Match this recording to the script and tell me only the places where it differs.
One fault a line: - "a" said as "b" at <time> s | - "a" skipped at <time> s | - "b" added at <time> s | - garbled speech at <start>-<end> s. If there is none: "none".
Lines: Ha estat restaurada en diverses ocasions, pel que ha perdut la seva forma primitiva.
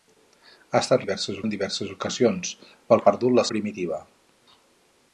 - "restaurada" said as "diverses" at 1.0 s
- "que" skipped at 3.0 s
- "seva forma" skipped at 3.4 s